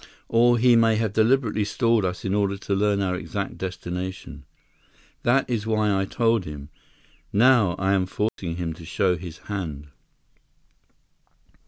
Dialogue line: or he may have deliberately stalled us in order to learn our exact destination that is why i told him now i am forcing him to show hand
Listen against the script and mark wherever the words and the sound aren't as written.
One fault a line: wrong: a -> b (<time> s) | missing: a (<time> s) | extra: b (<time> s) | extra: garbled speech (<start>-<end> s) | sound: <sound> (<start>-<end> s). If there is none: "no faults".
sound: dropout (8.3-8.4 s)
extra: his (9.2 s)